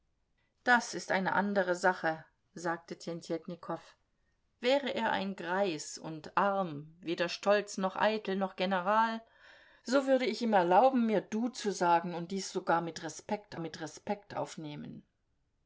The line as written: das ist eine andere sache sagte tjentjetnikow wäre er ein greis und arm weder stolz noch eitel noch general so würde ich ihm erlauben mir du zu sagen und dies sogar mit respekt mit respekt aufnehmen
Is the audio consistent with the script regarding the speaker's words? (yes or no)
yes